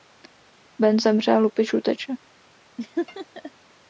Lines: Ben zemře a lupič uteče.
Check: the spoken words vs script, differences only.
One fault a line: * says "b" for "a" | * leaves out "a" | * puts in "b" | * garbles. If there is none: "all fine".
all fine